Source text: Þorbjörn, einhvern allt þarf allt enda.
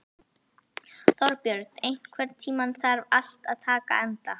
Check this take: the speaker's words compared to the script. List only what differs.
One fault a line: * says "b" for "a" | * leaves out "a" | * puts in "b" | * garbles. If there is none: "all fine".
* says "tímann" for "allt"
* puts in "að taka"